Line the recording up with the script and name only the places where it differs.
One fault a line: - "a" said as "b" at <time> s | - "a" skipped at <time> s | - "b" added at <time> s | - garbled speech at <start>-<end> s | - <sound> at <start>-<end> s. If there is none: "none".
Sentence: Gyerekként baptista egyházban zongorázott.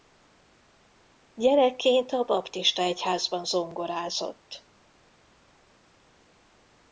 - "a" added at 2.1 s